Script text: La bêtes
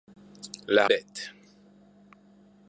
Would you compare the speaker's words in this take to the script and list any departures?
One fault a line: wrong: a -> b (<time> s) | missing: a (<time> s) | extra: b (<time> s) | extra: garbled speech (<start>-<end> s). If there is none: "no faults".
no faults